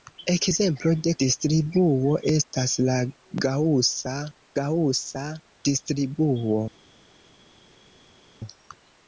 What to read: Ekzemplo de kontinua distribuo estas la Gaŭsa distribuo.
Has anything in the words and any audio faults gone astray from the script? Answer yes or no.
yes